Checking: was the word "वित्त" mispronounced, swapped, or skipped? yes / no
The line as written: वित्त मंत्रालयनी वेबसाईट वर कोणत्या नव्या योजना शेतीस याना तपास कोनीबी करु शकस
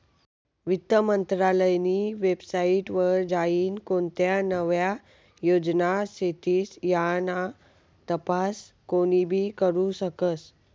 no